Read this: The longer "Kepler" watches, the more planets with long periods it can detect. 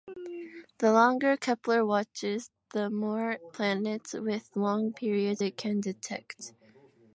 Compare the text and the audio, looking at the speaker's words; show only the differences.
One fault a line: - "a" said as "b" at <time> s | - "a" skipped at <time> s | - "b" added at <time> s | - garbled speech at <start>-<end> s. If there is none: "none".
none